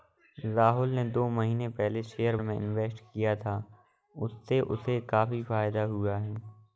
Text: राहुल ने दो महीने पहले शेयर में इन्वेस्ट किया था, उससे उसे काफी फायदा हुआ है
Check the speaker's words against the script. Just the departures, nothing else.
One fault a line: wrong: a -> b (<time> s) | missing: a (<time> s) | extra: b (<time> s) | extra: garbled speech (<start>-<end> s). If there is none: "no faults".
no faults